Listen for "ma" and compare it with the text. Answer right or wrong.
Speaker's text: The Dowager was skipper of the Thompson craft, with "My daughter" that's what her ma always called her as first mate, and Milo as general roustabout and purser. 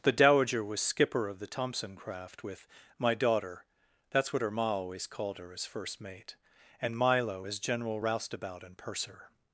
right